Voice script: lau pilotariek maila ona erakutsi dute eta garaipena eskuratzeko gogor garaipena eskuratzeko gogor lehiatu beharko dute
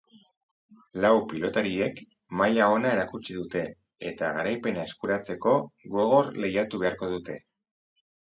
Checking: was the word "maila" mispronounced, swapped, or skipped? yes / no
no